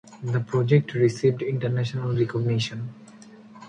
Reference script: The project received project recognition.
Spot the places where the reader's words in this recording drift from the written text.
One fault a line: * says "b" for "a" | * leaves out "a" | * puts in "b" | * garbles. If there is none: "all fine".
* says "international" for "project"